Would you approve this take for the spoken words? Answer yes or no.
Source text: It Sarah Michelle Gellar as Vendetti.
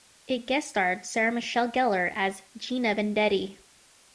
no